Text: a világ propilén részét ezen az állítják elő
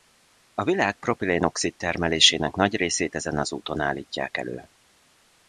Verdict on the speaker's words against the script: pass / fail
fail